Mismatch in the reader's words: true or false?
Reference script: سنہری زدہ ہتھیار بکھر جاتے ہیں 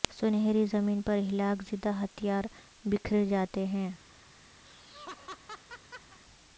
true